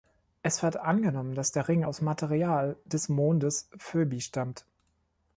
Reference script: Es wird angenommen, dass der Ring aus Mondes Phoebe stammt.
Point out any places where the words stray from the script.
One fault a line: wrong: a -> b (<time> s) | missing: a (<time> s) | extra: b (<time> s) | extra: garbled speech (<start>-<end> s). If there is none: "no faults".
extra: Material des (2.0 s)